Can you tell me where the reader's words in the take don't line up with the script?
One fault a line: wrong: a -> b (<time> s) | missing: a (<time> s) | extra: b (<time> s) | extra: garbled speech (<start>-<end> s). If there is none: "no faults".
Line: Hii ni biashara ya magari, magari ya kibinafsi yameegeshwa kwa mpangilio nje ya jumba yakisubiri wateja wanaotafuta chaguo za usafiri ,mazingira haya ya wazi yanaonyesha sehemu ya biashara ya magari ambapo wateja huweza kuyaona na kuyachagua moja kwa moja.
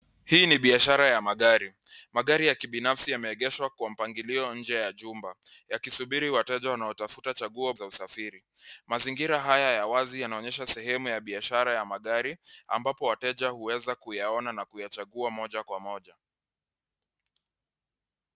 no faults